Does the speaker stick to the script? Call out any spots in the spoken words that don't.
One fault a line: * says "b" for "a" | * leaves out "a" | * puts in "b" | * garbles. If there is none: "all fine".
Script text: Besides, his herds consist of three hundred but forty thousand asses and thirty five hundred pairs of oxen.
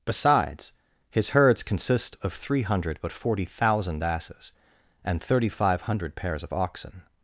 all fine